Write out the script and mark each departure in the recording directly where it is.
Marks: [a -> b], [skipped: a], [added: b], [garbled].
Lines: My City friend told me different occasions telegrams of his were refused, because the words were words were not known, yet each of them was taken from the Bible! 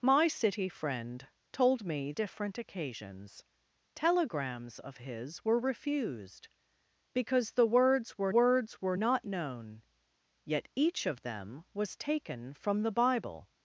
My City friend told me different occasions telegrams of his were refused, because the words were words were not known, yet each of them was taken from the Bible!